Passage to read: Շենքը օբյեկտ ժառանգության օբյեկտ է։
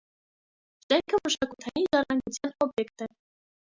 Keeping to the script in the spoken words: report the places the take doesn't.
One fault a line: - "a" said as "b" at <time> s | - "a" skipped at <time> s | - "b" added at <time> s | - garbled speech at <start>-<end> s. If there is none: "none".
- "օբյեկտ" said as "մշակութային" at 1.3 s